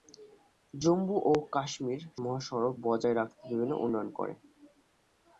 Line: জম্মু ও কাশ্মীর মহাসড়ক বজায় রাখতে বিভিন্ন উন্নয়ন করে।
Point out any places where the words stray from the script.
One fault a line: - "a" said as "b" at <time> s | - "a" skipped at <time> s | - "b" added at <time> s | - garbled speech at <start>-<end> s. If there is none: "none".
none